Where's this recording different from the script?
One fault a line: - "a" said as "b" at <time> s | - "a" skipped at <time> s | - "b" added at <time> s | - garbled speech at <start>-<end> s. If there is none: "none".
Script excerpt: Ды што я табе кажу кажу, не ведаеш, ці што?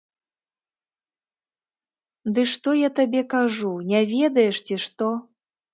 - "кажу" skipped at 3.8 s